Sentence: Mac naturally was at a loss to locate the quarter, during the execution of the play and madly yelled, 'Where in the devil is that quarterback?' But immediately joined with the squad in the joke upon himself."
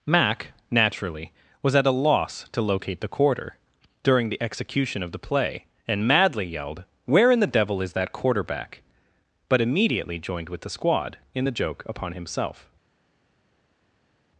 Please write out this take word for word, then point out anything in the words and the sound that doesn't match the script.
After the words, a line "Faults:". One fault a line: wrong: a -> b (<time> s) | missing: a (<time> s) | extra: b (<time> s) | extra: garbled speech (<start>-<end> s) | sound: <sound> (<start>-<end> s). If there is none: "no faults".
Mac naturally was at a loss to locate the quarter, during the execution of the play and madly yelled, 'Where in the devil is that quarterback?' But immediately joined with the squad in the joke upon himself."
Faults:
no faults